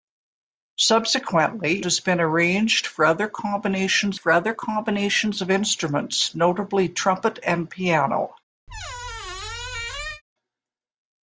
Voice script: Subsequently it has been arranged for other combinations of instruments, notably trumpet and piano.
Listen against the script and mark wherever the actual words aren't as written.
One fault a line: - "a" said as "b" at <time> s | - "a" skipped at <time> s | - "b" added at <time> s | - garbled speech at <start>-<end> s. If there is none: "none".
- "it" skipped at 1.9 s
- "for other combinations" added at 4.1 s